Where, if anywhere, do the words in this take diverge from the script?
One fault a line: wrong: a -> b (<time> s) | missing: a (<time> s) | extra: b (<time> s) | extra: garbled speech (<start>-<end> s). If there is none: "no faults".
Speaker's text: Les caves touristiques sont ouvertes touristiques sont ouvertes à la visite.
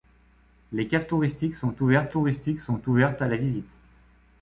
no faults